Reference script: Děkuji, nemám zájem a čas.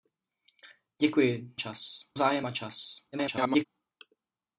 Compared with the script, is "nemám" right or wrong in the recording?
wrong